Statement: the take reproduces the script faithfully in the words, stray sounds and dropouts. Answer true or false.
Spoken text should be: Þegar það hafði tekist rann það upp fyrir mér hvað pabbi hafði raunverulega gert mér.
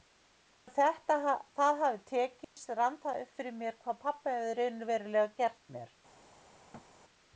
false